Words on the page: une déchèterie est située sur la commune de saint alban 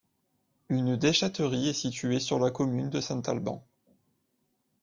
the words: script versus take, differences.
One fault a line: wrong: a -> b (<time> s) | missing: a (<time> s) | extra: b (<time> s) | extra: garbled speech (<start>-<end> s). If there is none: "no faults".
no faults